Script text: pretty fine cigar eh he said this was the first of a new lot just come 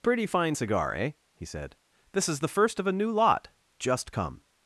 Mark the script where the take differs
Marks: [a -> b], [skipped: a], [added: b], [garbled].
pretty fine cigar eh he said this [was -> is] the first of a new lot just come